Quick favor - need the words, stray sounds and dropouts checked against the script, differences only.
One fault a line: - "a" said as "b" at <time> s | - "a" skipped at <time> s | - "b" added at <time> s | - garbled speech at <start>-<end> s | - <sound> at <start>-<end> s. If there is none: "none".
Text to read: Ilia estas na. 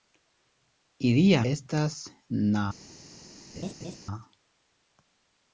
- laugh at 3.5-4.0 s